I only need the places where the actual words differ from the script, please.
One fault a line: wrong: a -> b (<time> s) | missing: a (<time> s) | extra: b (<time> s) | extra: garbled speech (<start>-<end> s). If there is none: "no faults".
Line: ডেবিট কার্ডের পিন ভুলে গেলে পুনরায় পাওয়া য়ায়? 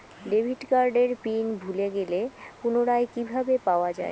extra: কিভাবে (3.1 s)